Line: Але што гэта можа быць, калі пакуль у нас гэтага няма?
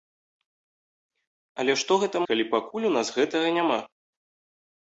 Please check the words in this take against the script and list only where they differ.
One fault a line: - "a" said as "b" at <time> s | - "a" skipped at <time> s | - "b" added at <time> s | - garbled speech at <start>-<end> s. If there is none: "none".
- "можа быць" skipped at 2.2 s